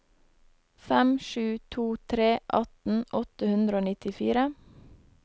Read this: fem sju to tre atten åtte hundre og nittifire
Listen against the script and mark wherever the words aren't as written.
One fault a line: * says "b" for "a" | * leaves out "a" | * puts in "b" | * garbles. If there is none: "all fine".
all fine